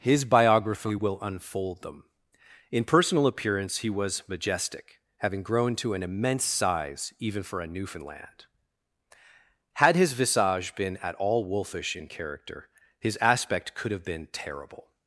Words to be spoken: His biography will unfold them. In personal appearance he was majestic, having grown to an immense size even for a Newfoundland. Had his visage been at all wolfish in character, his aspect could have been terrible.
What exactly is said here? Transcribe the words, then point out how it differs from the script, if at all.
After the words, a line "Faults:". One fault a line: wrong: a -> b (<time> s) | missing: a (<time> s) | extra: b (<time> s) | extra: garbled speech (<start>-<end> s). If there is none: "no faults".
His biography will unfold them. In personal appearance he was majestic, having grown to an immense size even for a Newfoundland. Had his visage been at all wolfish in character, his aspect could have been terrible.
Faults:
no faults